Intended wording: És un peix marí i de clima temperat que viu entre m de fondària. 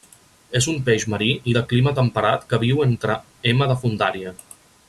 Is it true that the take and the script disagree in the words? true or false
false